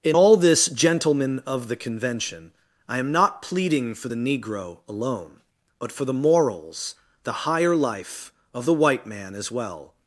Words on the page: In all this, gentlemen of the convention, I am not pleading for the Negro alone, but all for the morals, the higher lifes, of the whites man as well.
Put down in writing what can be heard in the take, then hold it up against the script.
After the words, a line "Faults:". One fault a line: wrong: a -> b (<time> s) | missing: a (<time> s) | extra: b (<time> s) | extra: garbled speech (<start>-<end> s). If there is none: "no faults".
In all this, gentlemen of the convention, I am not pleading for the Negro alone, but for the morals, the higher life, of the white man as well.
Faults:
missing: all (5.9 s)
wrong: lifes -> life (7.7 s)
wrong: whites -> white (8.7 s)